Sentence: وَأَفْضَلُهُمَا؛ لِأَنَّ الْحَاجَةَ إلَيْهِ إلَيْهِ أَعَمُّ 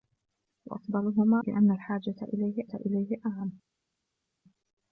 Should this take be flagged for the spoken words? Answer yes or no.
no